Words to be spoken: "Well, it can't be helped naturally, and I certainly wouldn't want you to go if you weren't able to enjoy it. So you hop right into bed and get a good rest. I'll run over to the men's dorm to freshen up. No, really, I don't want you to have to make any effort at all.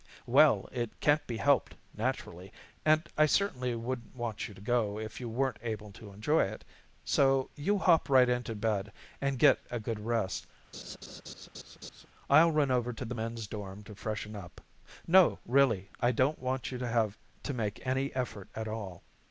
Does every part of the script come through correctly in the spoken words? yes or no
yes